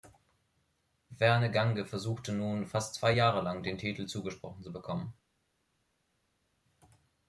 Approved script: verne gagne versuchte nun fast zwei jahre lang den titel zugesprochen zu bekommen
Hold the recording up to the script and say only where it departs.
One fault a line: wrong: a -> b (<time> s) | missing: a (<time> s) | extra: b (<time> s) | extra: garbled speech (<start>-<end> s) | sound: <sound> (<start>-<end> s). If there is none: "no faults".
no faults